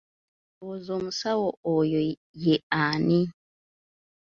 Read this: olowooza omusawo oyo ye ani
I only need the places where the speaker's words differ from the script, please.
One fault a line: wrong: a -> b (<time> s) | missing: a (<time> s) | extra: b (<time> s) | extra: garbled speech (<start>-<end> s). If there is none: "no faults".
no faults